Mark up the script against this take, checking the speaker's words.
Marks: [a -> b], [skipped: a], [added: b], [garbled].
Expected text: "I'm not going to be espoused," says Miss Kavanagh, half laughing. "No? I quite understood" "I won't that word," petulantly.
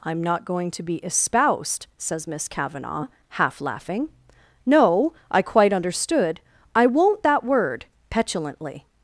"I'm not going to be espoused," says Miss Kavanagh, half laughing. "No? I quite understood" "I won't that word," petulantly.